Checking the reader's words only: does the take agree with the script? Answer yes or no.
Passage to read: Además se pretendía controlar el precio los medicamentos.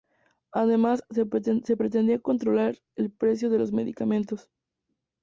no